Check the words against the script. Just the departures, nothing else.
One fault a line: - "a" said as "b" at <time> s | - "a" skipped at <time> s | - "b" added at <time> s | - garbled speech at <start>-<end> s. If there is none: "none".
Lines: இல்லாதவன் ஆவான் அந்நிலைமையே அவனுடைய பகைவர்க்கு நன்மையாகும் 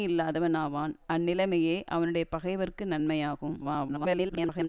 - garbled speech at 3.6-4.7 s